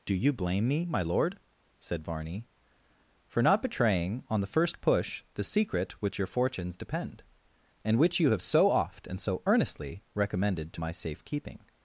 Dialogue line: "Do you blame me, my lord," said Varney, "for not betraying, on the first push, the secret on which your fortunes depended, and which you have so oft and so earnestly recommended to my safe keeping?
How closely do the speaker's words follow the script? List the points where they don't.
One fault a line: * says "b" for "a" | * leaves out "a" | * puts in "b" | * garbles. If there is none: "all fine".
* leaves out "on"
* says "depend" for "depended"